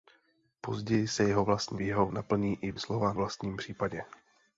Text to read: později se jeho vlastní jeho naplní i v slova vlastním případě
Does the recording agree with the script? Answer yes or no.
yes